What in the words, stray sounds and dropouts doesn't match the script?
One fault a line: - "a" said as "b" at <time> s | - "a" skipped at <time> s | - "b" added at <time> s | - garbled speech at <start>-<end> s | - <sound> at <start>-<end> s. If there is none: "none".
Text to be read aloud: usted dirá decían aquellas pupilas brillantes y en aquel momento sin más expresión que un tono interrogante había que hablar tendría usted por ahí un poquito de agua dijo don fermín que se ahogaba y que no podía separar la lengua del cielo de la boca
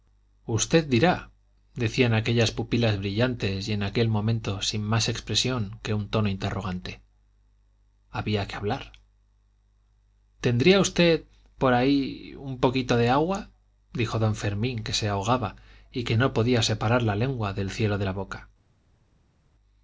none